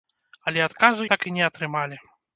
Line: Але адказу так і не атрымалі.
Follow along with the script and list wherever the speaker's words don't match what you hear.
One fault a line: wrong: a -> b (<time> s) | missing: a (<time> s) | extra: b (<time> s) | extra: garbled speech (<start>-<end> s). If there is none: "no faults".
no faults